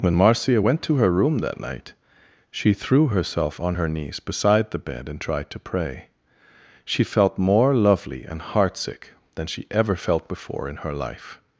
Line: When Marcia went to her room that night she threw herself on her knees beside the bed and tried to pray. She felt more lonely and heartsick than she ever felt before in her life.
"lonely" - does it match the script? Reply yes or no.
no